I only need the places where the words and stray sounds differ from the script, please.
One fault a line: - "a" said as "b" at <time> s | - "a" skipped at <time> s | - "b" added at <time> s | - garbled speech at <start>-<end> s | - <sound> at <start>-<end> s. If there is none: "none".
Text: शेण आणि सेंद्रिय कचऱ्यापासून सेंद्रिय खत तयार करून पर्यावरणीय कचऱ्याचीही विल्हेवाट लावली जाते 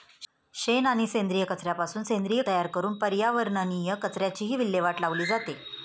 - "खत" skipped at 2.4 s